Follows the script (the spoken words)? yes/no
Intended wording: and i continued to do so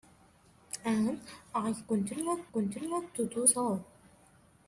no